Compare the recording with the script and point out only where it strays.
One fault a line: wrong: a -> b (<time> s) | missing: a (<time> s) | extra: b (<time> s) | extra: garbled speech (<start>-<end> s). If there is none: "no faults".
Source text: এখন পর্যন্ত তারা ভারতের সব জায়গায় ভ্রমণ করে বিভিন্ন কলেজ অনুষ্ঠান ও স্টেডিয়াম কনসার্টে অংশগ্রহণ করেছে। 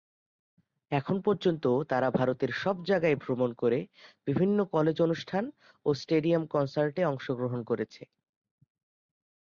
no faults